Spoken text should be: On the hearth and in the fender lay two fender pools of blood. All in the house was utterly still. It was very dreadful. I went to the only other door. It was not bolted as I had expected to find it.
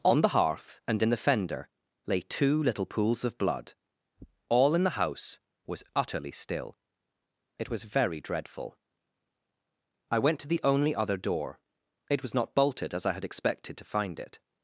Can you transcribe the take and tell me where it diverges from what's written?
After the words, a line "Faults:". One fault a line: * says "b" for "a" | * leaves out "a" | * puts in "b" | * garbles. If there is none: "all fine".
On the hearth and in the fender lay two little pools of blood. All in the house was utterly still. It was very dreadful. I went to the only other door. It was not bolted as I had expected to find it.
Faults:
* says "little" for "fender"